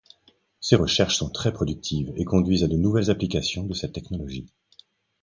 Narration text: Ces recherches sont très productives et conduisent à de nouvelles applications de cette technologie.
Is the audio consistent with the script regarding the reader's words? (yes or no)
yes